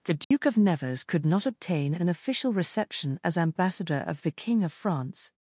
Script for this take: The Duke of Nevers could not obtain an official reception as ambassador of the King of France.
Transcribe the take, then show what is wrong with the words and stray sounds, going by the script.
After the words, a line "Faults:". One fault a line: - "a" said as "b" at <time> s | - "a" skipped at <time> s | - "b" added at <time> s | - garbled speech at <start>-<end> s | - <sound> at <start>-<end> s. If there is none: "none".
The Duke of Nevers could not obtain an official reception as ambassador of the King of France.
Faults:
- dropout at 0.2-0.3 s